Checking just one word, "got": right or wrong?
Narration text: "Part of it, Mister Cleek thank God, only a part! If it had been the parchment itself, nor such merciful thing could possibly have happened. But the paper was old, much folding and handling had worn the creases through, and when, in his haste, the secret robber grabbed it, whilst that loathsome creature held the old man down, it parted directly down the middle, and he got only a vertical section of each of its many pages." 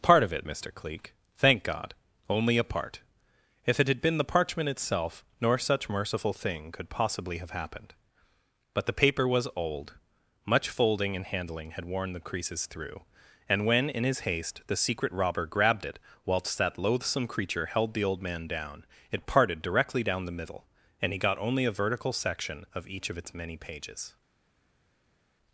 right